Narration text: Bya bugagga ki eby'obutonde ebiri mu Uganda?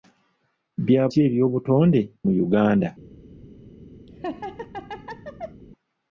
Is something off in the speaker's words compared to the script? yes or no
yes